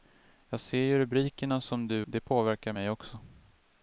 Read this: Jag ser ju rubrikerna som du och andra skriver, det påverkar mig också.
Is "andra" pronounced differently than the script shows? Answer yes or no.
yes